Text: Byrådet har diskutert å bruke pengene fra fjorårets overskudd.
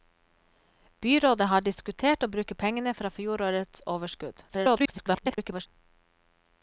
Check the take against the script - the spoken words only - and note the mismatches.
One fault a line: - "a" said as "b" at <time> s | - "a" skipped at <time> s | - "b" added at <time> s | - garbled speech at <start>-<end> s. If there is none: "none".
- garbled speech at 4.5-5.7 s